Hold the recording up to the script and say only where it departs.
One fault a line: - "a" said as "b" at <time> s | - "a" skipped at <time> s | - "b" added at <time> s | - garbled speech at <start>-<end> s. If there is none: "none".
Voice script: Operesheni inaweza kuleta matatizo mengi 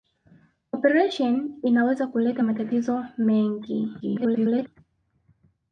- garbled speech at 4.0-4.7 s